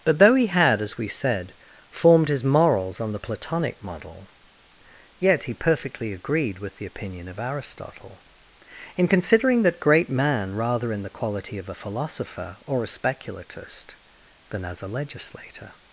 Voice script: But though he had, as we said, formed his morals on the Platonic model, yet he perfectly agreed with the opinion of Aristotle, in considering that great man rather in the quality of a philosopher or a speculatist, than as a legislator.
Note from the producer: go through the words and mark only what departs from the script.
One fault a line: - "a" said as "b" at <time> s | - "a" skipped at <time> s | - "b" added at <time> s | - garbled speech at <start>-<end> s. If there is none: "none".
none